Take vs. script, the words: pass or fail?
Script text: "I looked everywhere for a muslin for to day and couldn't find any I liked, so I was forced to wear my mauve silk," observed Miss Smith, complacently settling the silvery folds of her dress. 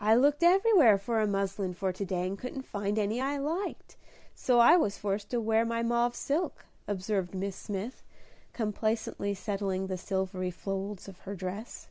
pass